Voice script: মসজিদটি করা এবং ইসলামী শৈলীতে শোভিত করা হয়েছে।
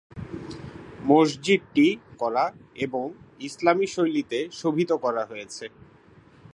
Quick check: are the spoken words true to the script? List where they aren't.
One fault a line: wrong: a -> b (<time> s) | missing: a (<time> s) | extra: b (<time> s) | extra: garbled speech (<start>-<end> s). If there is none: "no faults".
no faults